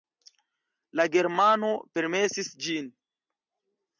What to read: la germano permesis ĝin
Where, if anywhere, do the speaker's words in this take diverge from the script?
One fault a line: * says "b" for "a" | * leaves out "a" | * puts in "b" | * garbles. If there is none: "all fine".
all fine